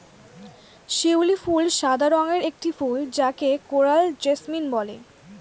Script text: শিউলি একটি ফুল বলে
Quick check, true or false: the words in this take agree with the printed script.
false